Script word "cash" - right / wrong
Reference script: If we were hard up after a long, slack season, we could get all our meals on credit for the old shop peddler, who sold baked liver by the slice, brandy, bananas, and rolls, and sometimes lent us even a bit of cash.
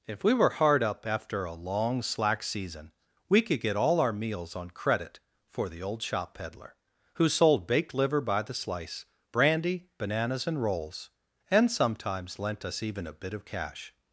right